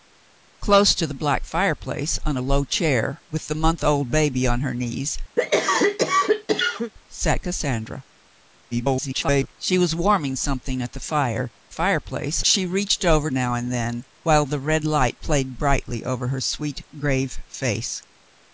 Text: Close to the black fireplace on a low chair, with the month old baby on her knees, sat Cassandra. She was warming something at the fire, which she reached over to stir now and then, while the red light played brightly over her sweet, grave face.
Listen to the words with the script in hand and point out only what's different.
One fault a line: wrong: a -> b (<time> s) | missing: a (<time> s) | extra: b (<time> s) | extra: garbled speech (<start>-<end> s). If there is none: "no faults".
extra: garbled speech (8.7-9.5 s)
wrong: which -> fireplace (11.7 s)
missing: to stir (13.3 s)